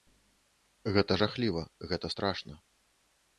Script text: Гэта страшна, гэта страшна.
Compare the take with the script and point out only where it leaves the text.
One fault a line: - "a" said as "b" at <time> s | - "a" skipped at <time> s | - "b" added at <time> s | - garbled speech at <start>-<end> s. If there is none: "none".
- "страшна" said as "жахліва" at 1.2 s